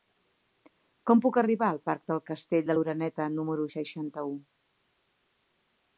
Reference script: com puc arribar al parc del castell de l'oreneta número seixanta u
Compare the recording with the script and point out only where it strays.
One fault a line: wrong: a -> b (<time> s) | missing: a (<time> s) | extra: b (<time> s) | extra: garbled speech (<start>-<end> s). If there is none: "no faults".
no faults